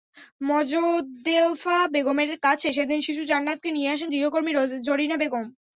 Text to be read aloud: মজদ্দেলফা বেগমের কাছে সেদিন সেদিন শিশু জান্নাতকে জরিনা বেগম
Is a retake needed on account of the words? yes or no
yes